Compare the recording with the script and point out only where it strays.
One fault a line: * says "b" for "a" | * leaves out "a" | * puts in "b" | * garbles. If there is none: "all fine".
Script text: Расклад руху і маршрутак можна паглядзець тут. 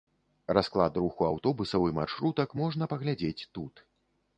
* puts in "аўтобусаў"